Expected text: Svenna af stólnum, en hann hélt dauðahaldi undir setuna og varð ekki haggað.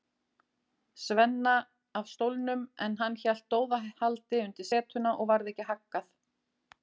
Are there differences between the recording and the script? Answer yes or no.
no